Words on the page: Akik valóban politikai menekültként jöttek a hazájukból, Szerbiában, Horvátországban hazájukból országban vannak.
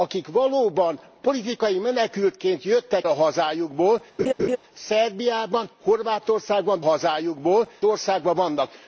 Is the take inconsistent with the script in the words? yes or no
no